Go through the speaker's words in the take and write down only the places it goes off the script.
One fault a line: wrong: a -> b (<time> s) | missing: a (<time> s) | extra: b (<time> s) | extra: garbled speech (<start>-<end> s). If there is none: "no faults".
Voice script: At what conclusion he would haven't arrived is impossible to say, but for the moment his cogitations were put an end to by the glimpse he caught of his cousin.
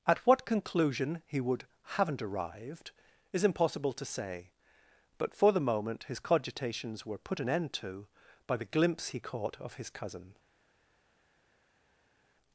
no faults